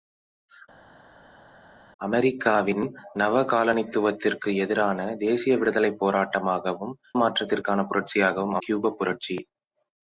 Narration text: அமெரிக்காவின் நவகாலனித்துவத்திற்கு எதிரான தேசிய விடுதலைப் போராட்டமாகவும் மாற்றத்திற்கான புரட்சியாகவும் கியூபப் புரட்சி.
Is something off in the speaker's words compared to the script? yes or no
no